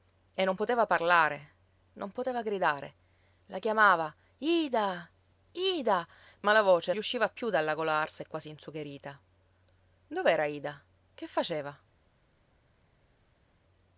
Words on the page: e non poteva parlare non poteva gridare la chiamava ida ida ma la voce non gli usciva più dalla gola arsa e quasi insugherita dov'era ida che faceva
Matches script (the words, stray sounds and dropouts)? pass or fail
fail